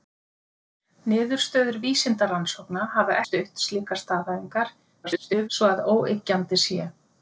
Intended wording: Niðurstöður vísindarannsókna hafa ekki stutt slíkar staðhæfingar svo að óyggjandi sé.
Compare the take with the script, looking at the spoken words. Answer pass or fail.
fail